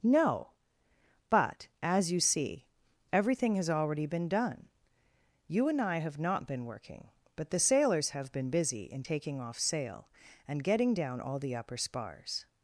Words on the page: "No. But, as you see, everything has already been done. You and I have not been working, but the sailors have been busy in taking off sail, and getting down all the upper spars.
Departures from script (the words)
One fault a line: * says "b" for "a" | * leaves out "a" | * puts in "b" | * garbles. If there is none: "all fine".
all fine